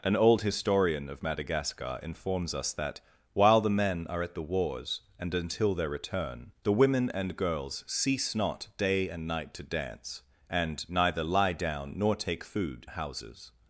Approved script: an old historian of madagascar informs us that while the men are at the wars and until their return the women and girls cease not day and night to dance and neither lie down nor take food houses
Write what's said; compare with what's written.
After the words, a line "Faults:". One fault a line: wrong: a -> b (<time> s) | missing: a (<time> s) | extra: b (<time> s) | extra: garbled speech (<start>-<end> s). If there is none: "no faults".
an old historian of madagascar informs us that while the men are at the wars and until their return the women and girls cease not day and night to dance and neither lie down nor take food houses
Faults:
no faults